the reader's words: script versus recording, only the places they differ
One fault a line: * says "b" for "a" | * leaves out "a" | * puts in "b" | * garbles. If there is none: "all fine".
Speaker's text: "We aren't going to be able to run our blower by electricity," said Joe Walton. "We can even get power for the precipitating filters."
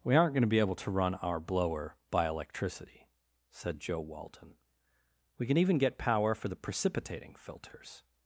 all fine